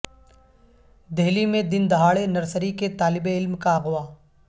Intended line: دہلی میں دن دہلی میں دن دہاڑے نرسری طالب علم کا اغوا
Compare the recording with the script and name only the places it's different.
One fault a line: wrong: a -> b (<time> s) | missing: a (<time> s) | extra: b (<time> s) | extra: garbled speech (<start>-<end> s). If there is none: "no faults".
missing: دہلی میں دن (1.9 s)
extra: کے (2.7 s)